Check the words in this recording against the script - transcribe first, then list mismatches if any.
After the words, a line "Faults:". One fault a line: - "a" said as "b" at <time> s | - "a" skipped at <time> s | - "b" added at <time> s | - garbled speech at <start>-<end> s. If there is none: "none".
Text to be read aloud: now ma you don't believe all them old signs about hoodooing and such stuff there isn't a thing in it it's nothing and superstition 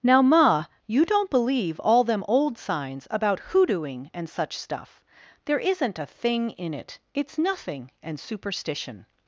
now ma you don't believe all them old signs about hoodooing and such stuff there isn't a thing in it it's nothing and superstition
Faults:
none